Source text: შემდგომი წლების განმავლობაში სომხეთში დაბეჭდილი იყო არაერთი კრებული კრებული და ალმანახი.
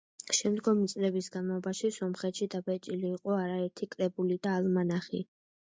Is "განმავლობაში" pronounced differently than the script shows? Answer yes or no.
no